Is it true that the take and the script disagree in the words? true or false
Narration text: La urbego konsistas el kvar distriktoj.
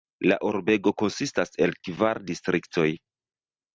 false